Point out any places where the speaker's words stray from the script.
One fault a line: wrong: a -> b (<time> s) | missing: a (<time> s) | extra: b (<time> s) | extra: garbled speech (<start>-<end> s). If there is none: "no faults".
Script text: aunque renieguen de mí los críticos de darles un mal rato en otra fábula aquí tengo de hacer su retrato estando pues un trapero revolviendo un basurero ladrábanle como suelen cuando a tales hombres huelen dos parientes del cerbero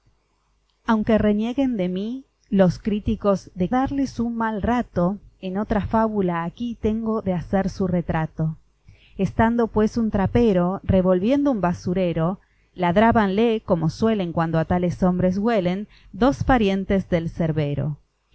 no faults